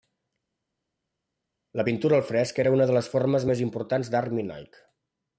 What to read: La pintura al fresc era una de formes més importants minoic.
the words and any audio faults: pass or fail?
fail